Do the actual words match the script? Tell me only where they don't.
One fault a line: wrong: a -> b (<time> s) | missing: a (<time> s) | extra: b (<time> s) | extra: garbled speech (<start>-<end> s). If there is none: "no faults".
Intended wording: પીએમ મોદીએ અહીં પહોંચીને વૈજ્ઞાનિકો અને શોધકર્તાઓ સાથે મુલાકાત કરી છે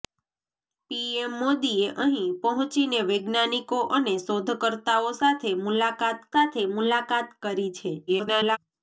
extra: સાથે મુલાકાત (6.4 s)
extra: garbled speech (8.1-8.6 s)